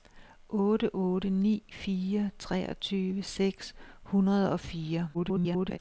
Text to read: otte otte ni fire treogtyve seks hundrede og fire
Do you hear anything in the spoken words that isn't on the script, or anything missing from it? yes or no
yes